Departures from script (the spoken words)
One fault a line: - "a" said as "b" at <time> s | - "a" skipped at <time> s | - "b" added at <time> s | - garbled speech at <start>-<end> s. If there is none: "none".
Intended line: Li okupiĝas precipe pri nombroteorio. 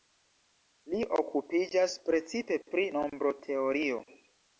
none